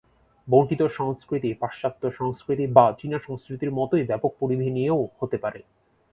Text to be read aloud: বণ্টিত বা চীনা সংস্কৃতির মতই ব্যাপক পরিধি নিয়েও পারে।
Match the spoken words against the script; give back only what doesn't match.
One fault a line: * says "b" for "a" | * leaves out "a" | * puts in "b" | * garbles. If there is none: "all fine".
* puts in "সংস্কৃতি পাশ্চাত্য সংস্কৃতি"
* puts in "হতে"